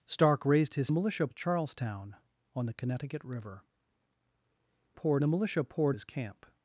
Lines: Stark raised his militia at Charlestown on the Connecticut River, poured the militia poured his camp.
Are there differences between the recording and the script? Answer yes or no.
no